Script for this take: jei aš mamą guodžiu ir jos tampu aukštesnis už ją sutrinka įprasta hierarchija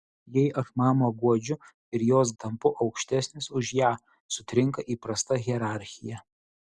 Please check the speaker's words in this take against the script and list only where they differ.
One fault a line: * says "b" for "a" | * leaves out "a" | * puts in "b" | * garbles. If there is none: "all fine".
all fine